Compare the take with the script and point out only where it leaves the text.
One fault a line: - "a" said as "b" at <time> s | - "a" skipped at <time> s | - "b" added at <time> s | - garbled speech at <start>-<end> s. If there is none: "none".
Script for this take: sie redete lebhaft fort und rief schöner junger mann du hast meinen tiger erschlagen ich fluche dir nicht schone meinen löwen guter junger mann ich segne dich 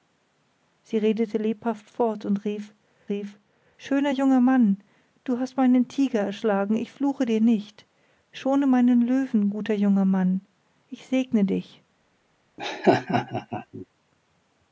- "rief" added at 3.1 s